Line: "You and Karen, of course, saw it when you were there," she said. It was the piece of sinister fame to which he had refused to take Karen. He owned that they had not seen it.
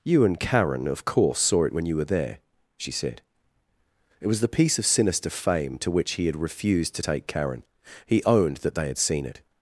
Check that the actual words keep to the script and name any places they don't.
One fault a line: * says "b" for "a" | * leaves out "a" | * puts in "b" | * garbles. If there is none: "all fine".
* leaves out "not"